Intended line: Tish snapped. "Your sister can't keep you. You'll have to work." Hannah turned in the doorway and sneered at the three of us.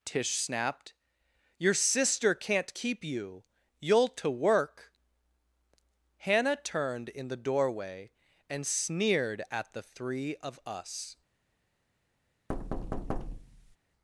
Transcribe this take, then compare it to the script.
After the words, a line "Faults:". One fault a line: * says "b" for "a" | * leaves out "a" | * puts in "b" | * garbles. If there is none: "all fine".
Tish snapped. "Your sister can't keep you. You'll to work." Hannah turned in the doorway and sneered at the three of us.
Faults:
* leaves out "have"